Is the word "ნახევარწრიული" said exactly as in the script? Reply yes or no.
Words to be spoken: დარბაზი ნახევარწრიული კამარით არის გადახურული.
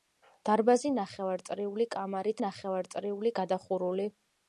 yes